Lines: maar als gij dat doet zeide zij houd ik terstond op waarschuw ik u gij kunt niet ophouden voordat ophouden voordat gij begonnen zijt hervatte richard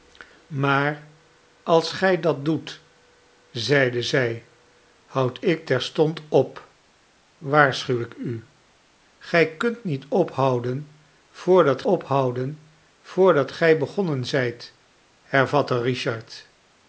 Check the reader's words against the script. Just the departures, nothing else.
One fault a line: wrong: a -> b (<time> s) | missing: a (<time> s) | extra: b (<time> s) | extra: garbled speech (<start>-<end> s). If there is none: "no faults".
no faults